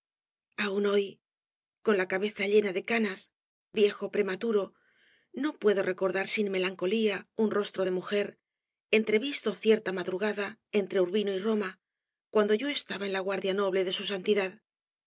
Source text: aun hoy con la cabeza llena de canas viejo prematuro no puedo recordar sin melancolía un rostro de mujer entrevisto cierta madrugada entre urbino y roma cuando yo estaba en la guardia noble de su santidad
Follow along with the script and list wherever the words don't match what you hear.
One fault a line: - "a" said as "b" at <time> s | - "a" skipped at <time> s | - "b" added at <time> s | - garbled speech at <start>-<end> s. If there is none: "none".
none